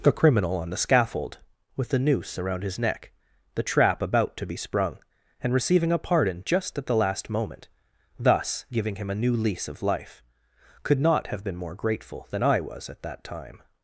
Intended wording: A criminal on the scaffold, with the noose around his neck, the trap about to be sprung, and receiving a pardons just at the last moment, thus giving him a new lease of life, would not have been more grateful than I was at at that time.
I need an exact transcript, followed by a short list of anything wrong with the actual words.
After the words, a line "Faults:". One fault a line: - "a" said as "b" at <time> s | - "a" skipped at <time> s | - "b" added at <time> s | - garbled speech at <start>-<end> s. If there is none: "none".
A criminal on the scaffold, with the noose around his neck, the trap about to be sprung, and receiving a pardon just at the last moment, thus giving him a new lease of life, could not have been more grateful than I was at that time.
Faults:
- "pardons" said as "pardon" at 6.0 s
- "would" said as "could" at 10.8 s
- "at" skipped at 13.0 s